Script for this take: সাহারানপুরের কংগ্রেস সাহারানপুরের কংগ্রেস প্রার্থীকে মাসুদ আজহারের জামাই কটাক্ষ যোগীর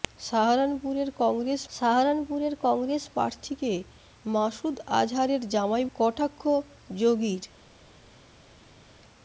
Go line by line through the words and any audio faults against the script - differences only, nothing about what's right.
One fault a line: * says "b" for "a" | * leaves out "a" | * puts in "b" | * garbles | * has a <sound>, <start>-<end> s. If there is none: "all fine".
all fine